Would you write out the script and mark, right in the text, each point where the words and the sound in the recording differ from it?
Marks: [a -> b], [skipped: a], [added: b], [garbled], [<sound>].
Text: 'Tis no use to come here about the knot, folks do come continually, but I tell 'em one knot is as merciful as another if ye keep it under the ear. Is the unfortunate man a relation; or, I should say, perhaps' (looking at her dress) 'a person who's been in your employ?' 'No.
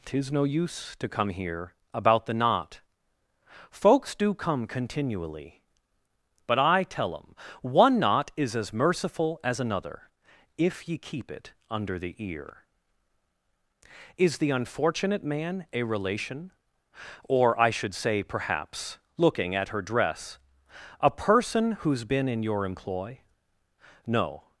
'Tis no use to come here about the knot, folks do come continually, but I tell 'em one knot is as merciful as another if ye keep it under the ear. Is the unfortunate man a relation; or, I should say, perhaps' (looking at her dress) 'a person who's been in your employ?' 'No.